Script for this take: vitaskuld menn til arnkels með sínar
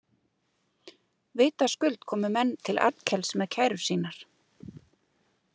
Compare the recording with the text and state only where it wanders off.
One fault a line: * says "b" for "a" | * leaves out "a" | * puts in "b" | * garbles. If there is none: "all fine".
* puts in "komu"
* puts in "kærur"